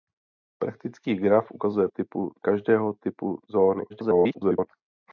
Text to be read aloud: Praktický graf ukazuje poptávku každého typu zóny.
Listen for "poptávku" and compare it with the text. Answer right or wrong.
wrong